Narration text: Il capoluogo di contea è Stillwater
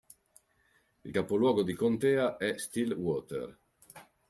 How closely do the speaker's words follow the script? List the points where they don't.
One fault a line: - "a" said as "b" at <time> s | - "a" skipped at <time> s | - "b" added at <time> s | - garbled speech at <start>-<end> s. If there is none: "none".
none